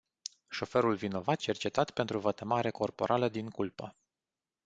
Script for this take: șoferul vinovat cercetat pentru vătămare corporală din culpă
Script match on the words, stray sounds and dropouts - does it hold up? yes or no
yes